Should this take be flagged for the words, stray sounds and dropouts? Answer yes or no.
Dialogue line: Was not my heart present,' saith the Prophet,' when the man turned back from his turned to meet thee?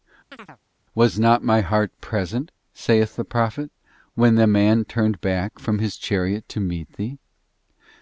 yes